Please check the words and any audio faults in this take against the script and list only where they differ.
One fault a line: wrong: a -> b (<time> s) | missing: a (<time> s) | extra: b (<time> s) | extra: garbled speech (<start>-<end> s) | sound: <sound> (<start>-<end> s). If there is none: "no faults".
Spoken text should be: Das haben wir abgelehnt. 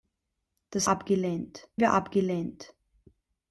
wrong: haben -> abgelehnt (0.9 s)